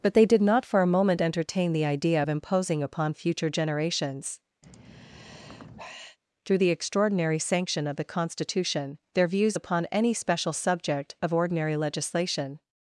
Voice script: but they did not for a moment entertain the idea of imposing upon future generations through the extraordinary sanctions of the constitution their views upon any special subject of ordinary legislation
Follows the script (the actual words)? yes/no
no